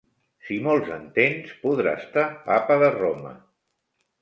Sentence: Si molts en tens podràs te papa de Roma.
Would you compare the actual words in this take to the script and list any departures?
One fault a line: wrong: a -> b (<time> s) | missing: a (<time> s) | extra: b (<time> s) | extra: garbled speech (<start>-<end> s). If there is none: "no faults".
no faults